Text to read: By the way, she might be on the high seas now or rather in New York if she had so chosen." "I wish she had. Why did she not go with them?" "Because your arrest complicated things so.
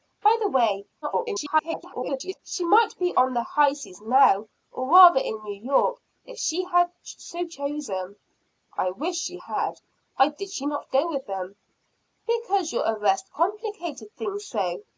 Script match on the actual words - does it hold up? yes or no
no